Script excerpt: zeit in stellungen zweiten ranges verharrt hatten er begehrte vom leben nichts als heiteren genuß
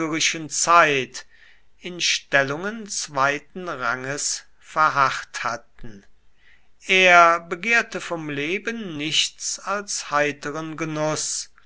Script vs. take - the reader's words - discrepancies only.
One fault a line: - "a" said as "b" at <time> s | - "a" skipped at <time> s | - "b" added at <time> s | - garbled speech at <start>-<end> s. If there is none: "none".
none